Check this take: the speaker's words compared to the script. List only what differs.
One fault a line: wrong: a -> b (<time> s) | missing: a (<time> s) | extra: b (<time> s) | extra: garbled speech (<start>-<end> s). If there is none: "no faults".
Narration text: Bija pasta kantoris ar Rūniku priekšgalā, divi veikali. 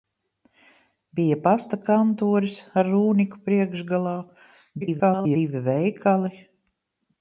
extra: garbled speech (4.8-5.4 s)